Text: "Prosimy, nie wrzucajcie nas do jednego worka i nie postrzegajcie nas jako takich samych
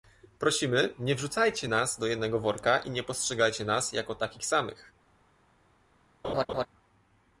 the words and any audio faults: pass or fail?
fail